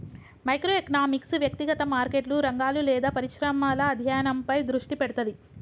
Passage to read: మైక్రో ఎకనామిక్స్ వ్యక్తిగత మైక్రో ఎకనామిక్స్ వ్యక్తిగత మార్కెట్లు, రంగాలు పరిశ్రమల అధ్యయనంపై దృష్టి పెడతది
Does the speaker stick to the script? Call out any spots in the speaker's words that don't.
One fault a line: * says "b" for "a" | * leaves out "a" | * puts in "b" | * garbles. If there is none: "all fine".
* leaves out "మైక్రో ఎకనామిక్స్ వ్యక్తిగత"
* puts in "లేదా"